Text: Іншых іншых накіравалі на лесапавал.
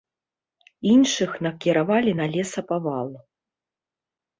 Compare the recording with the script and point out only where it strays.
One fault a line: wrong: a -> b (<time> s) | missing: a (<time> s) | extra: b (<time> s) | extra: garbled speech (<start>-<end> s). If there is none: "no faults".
missing: іншых (1.3 s)